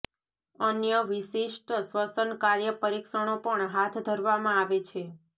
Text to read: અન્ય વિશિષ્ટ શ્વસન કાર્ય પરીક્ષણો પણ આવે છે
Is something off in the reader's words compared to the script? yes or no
yes